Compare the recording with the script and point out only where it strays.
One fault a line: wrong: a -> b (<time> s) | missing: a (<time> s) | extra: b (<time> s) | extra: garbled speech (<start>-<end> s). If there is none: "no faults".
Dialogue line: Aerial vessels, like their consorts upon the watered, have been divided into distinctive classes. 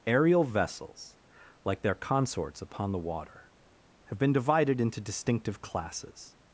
wrong: watered -> water (3.0 s)